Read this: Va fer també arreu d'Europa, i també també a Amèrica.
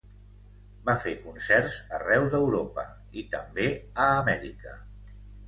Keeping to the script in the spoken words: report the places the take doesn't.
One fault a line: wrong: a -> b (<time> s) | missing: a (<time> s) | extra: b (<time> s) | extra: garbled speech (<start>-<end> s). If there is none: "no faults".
wrong: també -> concerts (1.2 s)
missing: també (3.7 s)